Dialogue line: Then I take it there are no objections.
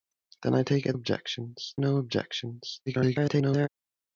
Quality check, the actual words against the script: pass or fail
fail